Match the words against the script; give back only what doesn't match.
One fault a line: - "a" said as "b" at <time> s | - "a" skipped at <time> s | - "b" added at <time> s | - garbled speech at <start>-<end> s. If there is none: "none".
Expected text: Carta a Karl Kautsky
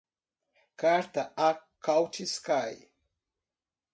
- "Karl" skipped at 1.6 s